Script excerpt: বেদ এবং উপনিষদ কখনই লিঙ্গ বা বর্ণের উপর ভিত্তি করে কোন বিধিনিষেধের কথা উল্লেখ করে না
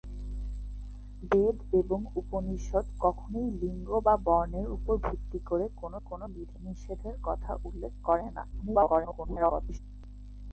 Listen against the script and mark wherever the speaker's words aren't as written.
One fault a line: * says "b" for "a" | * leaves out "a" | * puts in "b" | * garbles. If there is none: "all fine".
* puts in "কোন"
* garbles